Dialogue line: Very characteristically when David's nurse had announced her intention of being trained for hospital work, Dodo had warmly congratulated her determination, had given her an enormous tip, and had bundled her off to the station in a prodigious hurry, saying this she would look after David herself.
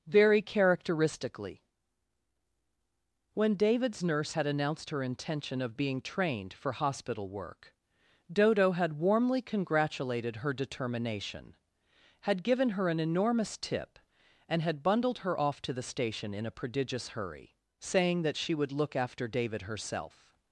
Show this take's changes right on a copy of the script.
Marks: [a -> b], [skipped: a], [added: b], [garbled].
Very characteristically when David's nurse had announced her intention of being trained for hospital work, Dodo had warmly congratulated her determination, had given her an enormous tip, and had bundled her off to the station in a prodigious hurry, saying [this -> that] she would look after David herself.